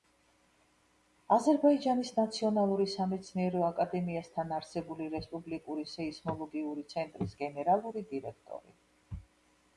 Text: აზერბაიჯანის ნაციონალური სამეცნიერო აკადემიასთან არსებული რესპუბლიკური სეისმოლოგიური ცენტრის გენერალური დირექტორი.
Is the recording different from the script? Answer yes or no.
no